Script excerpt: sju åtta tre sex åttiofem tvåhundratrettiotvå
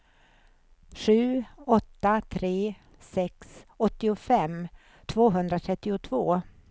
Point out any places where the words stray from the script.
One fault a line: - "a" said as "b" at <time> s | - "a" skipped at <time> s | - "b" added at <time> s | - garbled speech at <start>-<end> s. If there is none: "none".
none